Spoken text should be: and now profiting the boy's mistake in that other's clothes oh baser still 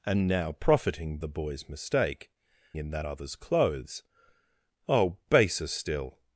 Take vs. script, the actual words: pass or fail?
pass